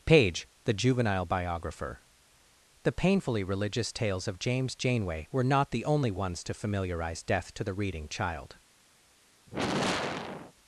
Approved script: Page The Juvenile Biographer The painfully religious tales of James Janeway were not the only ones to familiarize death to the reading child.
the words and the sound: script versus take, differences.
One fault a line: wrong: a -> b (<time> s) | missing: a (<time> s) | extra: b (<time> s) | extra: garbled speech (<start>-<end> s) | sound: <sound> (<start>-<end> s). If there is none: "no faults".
sound: sigh (9.5-10.5 s)